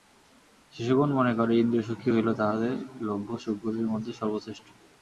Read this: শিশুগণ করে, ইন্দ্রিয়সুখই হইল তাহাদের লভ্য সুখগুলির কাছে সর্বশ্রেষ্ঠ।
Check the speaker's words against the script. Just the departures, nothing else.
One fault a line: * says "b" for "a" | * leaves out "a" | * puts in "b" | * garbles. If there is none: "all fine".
* puts in "মনে"
* says "মধ্যে" for "কাছে"